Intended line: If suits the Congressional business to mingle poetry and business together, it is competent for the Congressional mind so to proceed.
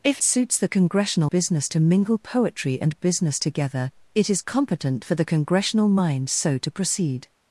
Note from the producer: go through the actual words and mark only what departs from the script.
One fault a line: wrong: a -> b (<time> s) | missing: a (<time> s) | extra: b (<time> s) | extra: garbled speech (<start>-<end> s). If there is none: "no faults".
no faults